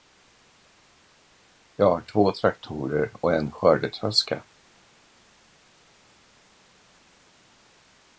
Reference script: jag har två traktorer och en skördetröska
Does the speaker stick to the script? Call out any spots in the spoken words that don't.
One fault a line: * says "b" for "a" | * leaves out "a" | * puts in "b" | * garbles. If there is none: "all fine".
all fine